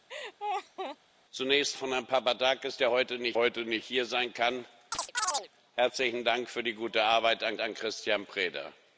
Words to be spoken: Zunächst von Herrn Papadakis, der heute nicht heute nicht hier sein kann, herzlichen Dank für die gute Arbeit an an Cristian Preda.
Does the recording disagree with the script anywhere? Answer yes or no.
no